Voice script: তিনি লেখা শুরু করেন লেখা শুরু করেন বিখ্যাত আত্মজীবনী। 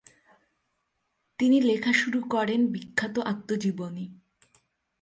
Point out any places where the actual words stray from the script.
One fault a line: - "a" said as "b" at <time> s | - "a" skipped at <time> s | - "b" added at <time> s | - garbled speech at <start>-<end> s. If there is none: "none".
- "লেখা শুরু করেন" skipped at 2.6 s